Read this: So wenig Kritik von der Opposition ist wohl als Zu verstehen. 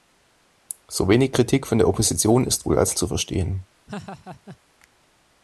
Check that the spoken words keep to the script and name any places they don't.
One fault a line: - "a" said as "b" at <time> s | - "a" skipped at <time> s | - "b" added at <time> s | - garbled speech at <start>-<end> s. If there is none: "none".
none